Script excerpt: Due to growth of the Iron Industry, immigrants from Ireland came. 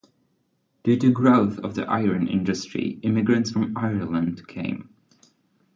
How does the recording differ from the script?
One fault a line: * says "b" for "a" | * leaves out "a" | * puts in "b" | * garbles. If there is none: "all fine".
all fine